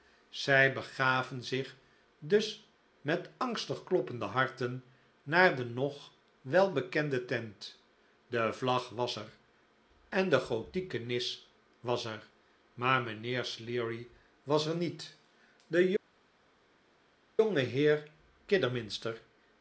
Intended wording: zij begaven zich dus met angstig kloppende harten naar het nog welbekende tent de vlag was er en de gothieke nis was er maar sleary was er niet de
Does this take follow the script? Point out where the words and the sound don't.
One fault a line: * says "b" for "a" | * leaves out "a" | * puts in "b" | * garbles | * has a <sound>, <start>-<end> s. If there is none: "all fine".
* says "de" for "het"
* puts in "mijnheer"